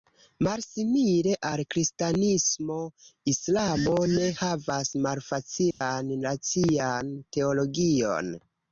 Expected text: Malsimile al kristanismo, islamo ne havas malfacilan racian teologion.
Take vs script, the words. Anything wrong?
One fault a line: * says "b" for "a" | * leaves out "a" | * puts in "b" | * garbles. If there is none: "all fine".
all fine